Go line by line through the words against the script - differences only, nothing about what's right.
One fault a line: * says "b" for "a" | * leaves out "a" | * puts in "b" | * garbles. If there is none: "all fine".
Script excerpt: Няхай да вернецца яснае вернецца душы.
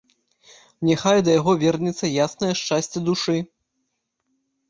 * puts in "яго"
* says "шчасце" for "вернецца"